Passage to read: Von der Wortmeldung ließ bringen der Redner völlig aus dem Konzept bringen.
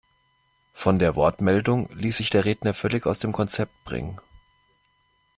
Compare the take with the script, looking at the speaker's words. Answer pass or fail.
fail